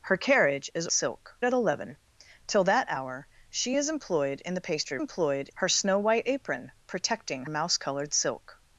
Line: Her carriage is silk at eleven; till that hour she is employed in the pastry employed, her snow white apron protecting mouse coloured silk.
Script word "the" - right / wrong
right